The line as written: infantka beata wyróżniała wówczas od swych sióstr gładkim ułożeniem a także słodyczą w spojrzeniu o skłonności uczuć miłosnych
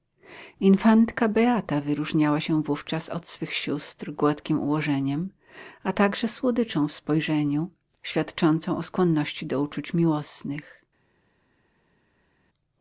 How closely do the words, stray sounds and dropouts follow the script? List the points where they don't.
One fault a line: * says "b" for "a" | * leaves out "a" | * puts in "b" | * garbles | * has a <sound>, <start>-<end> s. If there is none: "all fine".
* puts in "się"
* puts in "świadczącą"
* puts in "do"